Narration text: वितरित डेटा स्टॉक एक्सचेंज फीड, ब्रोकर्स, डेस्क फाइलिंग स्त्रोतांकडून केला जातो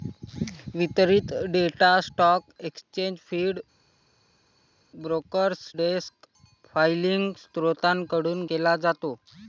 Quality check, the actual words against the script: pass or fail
pass